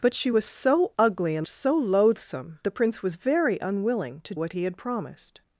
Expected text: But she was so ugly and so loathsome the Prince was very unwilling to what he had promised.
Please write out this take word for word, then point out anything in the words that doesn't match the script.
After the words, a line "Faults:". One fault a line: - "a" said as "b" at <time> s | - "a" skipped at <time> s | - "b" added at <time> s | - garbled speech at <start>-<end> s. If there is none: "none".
But she was so ugly and so loathsome the Prince was very unwilling to what he had promised.
Faults:
none